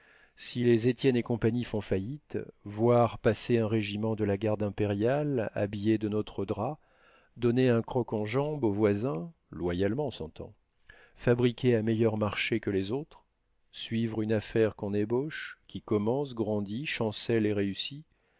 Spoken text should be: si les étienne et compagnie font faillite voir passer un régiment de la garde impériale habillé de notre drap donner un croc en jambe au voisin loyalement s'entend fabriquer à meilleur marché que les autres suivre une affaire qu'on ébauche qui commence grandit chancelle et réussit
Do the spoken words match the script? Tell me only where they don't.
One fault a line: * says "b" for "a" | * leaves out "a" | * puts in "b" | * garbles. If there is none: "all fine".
all fine